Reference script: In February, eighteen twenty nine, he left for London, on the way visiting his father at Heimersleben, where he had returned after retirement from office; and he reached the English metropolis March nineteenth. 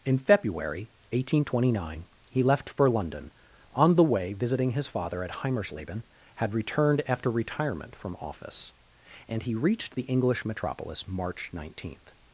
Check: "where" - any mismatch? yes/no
yes